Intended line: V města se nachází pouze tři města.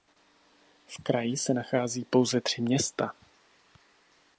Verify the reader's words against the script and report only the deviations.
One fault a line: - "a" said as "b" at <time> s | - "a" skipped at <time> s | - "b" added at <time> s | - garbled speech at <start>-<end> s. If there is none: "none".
- "města" said as "kraji" at 1.0 s